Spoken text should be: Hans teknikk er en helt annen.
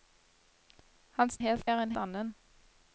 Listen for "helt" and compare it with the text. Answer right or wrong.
wrong